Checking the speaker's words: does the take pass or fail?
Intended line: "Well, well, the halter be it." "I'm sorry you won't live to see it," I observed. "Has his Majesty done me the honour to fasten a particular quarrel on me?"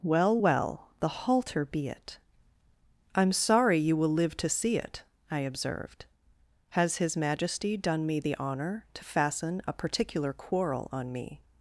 fail